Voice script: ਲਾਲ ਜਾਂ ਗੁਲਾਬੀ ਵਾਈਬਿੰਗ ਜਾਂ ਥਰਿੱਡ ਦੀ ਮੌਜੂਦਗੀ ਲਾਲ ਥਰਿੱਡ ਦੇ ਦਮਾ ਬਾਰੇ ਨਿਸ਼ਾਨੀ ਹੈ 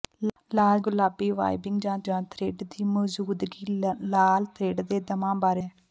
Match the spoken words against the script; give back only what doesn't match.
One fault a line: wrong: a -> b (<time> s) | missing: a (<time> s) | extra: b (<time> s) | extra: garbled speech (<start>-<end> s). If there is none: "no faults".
missing: ਜਾਂ (0.8 s)
extra: ਜਾਂ (2.0 s)
missing: ਨਿਸ਼ਾਨੀ (5.6 s)